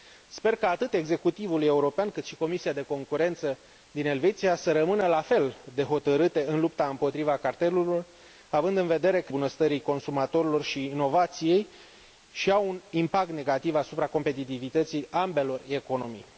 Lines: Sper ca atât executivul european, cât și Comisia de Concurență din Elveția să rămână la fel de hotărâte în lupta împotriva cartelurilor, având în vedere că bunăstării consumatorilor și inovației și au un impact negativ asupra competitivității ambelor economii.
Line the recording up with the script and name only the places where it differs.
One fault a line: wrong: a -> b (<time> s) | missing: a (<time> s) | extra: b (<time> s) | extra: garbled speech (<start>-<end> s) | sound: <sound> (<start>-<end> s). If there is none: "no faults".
no faults